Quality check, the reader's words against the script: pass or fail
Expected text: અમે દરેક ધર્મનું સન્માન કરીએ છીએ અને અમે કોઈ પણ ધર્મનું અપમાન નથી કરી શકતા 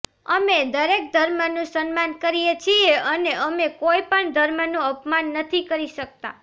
pass